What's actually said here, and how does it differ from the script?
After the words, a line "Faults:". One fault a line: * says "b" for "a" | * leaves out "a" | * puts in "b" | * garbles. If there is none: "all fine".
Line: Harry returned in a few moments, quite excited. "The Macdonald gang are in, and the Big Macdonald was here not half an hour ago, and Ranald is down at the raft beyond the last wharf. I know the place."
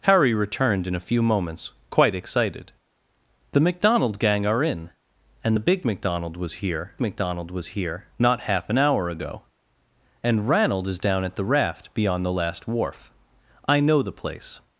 Harry returned in a few moments, quite excited. "The Macdonald gang are in, and the Big Macdonald was here Macdonald was here not half an hour ago, and Ranald is down at the raft beyond the last wharf. I know the place."
Faults:
* puts in "Macdonald was here"